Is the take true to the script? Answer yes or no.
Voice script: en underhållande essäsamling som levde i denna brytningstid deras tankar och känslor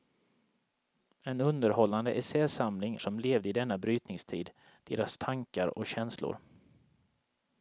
yes